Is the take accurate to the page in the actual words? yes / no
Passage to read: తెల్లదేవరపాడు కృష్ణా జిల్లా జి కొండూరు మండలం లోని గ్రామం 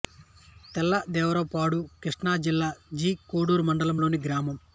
yes